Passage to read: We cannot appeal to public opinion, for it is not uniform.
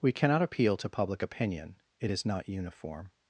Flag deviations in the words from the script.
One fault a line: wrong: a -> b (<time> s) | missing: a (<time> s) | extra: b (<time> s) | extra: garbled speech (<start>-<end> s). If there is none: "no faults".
missing: for (1.8 s)